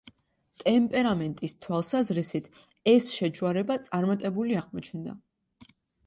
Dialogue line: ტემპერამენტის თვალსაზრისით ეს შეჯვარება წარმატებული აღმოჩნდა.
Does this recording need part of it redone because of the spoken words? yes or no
no